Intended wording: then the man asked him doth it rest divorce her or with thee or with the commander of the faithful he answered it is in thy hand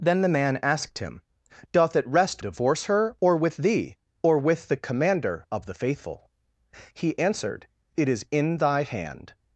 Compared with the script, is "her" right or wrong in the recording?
right